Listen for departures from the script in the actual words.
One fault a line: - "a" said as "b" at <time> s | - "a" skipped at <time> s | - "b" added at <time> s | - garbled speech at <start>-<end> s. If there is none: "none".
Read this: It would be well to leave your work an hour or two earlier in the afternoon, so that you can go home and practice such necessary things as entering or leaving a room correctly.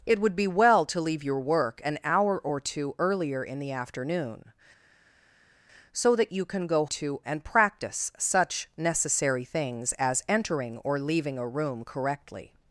- "home" said as "two" at 6.8 s